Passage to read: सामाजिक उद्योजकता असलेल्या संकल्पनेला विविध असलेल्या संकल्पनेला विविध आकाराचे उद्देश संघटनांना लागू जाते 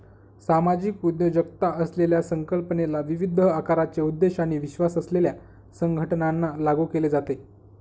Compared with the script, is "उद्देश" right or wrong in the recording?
wrong